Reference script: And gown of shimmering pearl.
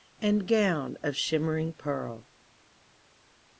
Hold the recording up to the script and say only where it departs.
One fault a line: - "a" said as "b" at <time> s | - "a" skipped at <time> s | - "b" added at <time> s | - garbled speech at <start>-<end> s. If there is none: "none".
none